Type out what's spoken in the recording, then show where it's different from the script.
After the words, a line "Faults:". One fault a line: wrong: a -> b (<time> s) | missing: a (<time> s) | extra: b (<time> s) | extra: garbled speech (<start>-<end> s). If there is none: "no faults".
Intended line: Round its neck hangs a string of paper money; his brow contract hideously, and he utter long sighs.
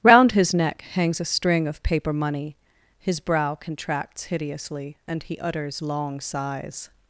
Round his neck hangs a string of paper money; his brow contracts hideously, and he utters long sighs.
Faults:
wrong: its -> his (0.3 s)
wrong: contract -> contracts (3.5 s)
wrong: utter -> utters (5.4 s)